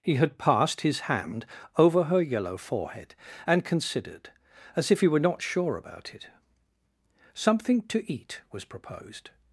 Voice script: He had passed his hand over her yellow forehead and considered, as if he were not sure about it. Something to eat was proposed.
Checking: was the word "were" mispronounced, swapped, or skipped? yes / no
no